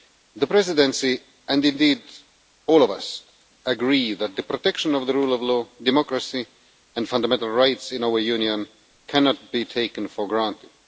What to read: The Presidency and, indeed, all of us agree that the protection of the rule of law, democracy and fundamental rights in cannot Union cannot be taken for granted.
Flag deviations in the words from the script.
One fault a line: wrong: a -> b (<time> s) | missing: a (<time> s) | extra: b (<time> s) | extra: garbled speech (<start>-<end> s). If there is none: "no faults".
wrong: cannot -> our (8.0 s)